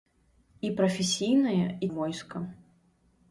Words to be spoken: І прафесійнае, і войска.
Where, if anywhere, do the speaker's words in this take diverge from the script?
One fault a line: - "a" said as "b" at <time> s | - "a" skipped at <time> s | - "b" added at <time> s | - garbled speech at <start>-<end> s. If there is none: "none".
none